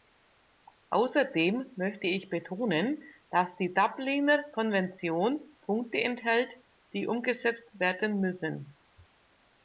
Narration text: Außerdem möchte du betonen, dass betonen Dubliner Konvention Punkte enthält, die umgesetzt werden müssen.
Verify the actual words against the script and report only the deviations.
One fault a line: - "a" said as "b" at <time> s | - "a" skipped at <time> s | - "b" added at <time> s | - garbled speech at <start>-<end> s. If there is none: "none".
- "du" said as "ich" at 2.0 s
- "betonen" said as "die" at 3.6 s